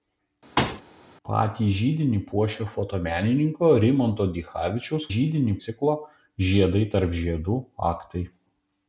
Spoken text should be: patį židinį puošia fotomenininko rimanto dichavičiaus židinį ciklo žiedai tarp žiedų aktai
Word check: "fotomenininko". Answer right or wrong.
right